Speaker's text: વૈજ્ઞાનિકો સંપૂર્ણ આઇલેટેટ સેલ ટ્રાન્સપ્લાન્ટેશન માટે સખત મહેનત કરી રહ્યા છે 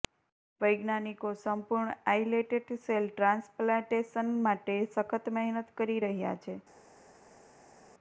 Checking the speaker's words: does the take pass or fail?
pass